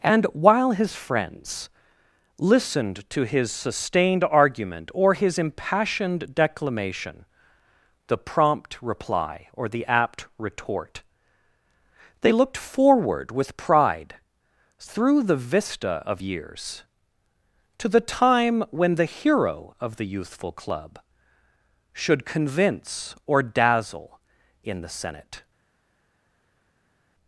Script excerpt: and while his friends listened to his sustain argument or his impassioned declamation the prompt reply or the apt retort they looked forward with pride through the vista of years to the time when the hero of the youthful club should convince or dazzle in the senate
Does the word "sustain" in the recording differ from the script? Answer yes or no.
yes